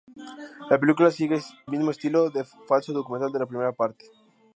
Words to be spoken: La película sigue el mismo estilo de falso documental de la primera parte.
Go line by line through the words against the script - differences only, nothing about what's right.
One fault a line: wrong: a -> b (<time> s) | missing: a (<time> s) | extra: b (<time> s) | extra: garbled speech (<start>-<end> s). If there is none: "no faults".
missing: el (1.4 s)